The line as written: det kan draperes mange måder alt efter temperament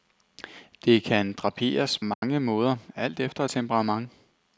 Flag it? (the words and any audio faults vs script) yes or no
yes